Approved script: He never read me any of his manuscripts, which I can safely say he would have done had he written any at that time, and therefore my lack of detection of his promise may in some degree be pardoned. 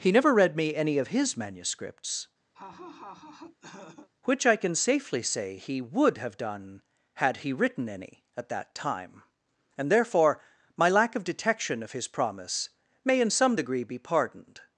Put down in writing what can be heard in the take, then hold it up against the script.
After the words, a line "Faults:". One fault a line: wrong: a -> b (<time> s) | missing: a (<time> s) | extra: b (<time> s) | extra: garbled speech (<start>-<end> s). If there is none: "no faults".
He never read me any of his manuscripts, which I can safely say he would have done had he written any at that time, and therefore my lack of detection of his promise may in some degree be pardoned.
Faults:
no faults